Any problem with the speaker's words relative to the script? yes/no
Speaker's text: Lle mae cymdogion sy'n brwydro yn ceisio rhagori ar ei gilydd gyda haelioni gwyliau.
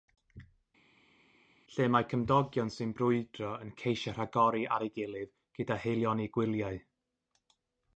no